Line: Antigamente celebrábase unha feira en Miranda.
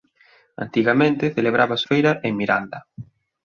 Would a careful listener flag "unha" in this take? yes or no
yes